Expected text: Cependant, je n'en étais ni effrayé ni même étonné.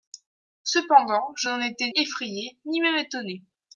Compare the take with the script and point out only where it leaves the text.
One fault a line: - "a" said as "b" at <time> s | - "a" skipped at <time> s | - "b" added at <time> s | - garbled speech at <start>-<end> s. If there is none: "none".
- "ni" skipped at 1.9 s